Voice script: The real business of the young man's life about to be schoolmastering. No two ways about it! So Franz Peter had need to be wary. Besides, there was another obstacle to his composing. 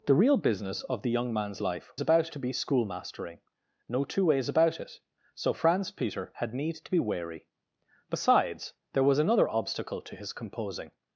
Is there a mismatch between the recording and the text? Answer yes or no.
no